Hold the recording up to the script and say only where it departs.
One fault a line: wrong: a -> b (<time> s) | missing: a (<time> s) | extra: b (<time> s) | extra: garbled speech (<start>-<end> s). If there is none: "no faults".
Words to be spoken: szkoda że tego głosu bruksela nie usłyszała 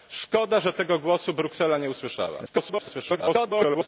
extra: garbled speech (2.5-3.9 s)